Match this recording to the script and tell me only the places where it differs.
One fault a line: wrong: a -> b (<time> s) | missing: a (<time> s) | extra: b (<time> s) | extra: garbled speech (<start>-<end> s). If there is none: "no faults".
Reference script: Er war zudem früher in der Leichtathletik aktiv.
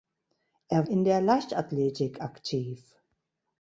missing: war zudem früher (0.9 s)